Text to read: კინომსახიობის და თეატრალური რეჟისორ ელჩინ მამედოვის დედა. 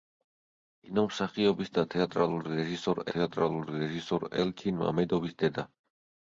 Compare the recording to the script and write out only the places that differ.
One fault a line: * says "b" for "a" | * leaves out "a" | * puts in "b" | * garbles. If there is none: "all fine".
* puts in "თეატრალური რეჟისორ"